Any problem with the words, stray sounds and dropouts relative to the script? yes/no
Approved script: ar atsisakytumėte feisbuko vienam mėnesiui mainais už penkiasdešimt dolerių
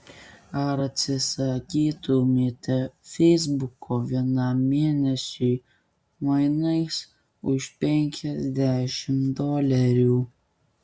no